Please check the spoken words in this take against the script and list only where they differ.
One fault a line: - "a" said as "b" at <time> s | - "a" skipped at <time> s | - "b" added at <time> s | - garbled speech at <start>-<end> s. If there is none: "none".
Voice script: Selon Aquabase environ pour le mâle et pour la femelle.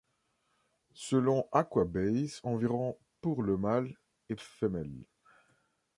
- "pour la" skipped at 4.3 s